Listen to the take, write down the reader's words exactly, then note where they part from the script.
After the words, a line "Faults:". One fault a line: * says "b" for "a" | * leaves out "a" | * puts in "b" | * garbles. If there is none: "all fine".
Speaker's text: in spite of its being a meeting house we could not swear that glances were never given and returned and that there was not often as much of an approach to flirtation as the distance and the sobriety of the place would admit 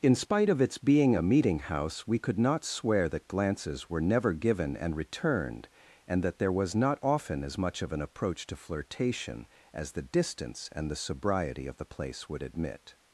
in spite of its being a meeting house we could not swear that glances were never given and returned and that there was not often as much of an approach to flirtation as the distance and the sobriety of the place would admit
Faults:
all fine